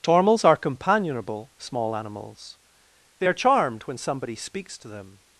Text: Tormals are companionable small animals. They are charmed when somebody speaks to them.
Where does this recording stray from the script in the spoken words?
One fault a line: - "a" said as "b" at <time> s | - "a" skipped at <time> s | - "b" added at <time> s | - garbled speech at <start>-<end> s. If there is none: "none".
none